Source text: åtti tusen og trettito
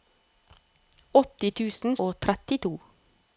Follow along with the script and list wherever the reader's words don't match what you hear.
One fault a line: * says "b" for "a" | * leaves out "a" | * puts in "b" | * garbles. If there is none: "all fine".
all fine